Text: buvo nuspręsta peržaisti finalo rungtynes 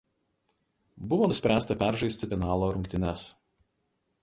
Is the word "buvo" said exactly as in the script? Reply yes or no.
yes